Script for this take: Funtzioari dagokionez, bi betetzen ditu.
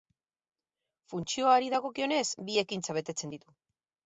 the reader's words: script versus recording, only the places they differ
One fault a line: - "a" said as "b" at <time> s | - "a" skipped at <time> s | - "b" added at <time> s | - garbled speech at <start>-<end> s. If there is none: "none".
- "ekintza" added at 2.6 s